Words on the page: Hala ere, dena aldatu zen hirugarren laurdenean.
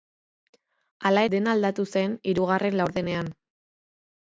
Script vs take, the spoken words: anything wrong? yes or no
yes